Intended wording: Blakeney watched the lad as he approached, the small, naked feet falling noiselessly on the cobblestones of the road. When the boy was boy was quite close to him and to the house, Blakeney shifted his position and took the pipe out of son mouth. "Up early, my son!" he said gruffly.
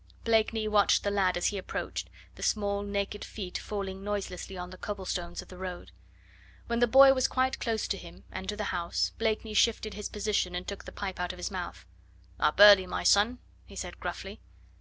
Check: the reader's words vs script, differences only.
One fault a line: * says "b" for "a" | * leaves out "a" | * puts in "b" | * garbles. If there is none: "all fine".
* leaves out "boy was"
* says "his" for "son"